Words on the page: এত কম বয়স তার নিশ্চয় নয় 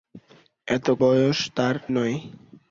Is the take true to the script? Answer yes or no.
no